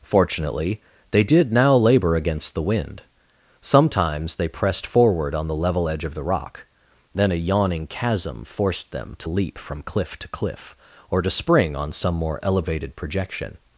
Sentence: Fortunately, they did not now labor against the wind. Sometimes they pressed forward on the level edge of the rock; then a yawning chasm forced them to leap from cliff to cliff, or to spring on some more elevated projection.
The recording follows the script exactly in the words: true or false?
false